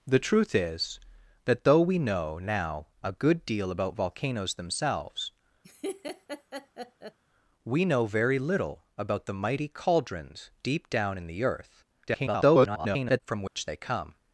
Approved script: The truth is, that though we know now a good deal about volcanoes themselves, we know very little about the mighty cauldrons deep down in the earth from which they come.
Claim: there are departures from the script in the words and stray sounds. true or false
true